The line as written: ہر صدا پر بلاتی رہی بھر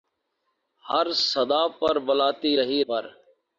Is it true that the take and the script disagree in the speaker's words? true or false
false